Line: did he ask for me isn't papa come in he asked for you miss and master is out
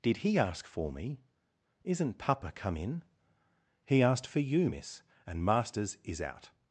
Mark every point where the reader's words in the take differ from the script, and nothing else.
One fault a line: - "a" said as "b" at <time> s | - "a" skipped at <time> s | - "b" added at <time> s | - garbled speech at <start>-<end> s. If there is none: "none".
- "master" said as "masters" at 5.4 s